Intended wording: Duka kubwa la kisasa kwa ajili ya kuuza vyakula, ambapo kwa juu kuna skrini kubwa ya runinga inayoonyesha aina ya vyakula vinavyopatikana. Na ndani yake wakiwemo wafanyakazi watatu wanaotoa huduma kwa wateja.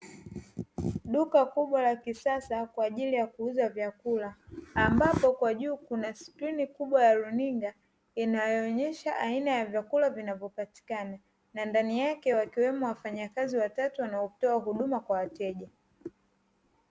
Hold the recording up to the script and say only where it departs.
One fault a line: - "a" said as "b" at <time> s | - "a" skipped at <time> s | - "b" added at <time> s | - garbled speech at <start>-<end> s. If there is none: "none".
none